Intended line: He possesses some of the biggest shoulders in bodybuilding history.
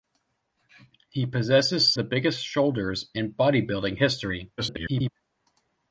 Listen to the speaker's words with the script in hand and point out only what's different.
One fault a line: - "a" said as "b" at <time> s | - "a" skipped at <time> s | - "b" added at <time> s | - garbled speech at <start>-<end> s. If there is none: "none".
- "some of" skipped at 1.9 s
- garbled speech at 4.6-5.1 s